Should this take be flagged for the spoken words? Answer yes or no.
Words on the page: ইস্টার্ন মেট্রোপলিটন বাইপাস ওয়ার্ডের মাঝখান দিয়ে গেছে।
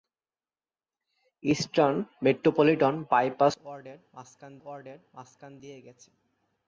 yes